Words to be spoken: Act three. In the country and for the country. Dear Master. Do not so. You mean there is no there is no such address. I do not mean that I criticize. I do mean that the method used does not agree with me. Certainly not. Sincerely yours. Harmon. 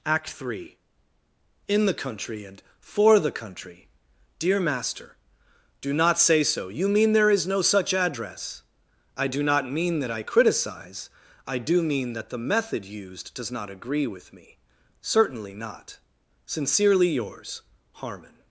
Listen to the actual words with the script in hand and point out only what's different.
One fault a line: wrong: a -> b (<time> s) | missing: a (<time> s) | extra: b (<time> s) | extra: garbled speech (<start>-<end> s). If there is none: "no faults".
extra: say (6.2 s)
missing: there is no (7.6 s)